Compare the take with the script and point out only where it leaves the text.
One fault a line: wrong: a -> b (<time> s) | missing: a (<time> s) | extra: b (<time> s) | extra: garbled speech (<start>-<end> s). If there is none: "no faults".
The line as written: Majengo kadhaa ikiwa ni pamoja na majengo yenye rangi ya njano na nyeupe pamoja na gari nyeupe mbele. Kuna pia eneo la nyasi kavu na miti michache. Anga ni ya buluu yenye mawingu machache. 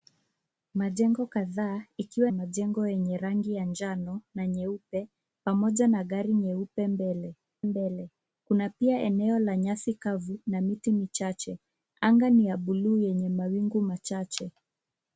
missing: ni pamoja na (2.3 s)
extra: mbele (7.6 s)